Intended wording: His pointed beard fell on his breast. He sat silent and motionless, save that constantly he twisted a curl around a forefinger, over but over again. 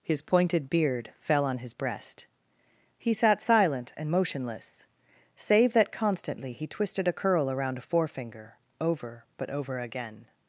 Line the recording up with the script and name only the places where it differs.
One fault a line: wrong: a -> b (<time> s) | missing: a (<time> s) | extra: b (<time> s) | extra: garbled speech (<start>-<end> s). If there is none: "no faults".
no faults